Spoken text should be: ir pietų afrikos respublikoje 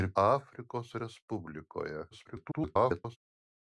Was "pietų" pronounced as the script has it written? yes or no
no